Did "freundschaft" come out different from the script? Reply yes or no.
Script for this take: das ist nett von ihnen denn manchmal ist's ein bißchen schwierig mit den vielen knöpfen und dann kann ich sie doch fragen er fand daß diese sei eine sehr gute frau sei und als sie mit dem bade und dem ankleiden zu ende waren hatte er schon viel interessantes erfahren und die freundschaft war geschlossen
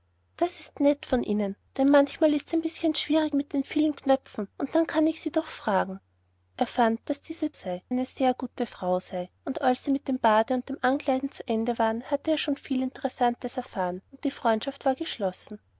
no